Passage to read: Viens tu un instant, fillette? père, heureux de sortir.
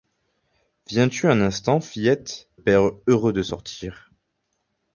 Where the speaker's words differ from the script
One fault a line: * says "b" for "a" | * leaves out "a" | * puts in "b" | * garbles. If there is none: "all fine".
all fine